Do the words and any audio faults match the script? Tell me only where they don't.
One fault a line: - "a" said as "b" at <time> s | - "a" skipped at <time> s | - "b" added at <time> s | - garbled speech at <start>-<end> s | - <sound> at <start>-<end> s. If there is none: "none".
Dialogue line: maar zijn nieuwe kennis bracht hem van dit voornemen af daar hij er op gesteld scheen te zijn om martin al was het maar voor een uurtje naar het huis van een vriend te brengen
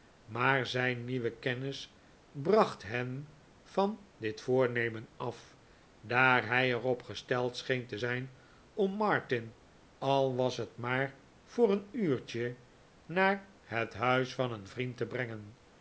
none